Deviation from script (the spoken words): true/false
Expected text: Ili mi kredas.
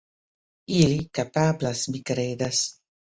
true